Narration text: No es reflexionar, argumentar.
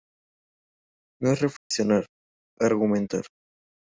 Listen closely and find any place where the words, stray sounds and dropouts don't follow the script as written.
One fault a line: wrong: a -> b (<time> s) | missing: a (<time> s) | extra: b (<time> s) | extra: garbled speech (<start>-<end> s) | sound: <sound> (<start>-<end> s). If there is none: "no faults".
sound: dropout (1.6-1.7 s)